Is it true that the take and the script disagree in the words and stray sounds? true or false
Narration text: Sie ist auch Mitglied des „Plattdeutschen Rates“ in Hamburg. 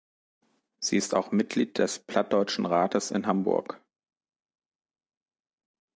false